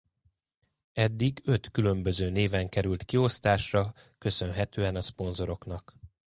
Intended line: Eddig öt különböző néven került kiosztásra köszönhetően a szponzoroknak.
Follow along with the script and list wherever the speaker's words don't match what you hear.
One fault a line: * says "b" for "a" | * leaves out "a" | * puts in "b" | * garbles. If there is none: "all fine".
all fine